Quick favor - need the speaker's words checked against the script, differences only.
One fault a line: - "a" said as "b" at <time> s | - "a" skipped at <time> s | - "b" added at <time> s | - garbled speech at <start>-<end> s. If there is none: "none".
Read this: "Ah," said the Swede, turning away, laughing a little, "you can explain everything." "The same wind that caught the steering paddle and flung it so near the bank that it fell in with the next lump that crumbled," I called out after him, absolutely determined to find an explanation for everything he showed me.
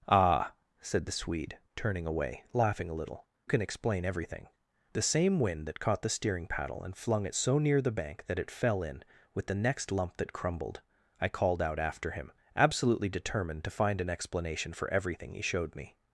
- "you" skipped at 3.3 s